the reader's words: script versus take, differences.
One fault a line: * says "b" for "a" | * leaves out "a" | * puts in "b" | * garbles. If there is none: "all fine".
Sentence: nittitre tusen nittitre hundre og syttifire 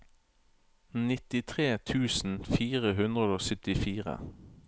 * says "fire" for "nittitre"